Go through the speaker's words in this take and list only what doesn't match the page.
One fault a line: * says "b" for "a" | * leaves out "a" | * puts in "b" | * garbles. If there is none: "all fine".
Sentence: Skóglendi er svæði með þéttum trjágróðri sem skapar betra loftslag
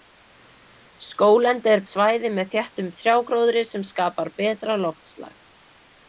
all fine